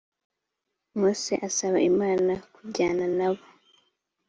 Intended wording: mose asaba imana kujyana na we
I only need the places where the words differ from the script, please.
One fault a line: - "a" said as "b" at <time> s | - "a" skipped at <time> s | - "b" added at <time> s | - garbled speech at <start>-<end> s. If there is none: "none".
- "we" said as "bo" at 3.3 s